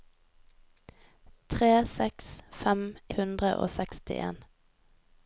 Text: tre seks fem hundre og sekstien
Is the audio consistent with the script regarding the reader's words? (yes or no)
yes